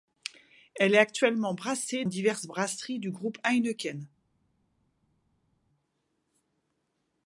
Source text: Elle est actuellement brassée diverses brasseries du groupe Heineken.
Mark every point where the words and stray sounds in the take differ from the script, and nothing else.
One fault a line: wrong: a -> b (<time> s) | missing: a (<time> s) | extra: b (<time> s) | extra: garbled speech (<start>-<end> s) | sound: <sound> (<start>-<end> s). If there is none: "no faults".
no faults